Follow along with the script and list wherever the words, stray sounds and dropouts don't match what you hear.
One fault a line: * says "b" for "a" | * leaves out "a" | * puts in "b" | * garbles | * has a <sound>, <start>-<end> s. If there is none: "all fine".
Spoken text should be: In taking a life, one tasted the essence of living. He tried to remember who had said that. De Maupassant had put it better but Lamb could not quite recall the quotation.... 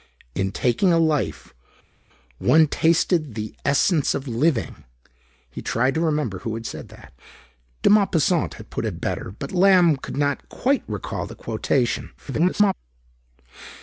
* garbles